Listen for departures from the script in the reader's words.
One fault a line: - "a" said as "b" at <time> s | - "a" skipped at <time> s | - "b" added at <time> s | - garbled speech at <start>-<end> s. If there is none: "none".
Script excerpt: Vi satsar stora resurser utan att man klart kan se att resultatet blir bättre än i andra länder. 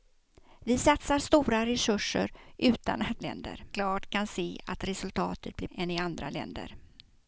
- "man" said as "länder" at 3.2 s
- "bättre" skipped at 5.7 s